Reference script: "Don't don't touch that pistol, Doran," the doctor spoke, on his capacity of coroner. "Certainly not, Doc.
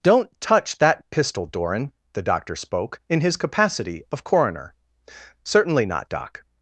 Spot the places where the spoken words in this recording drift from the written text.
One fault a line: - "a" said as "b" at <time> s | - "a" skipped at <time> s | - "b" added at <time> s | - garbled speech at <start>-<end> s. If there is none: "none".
- "don't" skipped at 0.3 s
- "on" said as "in" at 3.1 s